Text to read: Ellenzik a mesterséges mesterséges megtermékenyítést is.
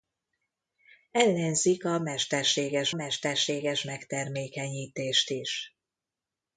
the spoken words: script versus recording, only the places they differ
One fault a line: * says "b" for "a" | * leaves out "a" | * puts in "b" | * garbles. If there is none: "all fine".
all fine